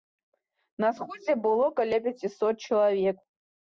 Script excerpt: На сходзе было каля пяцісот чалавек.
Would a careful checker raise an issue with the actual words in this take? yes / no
no